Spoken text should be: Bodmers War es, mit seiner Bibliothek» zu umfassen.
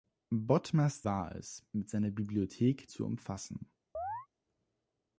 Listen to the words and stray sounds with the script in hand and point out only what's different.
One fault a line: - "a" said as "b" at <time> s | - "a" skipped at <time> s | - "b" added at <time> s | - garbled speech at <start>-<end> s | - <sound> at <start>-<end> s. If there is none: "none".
- chirp at 3.9-4.3 s